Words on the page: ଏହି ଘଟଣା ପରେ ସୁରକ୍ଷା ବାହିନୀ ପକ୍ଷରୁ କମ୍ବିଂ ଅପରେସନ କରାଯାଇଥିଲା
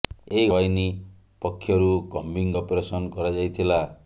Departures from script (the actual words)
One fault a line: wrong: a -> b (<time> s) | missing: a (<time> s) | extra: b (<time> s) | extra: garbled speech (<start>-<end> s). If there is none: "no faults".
missing: ଘଟଣା ପରେ ସୁରକ୍ଷା (0.5 s)